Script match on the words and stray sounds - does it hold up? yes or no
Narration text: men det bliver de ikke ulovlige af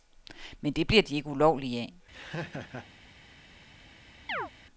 no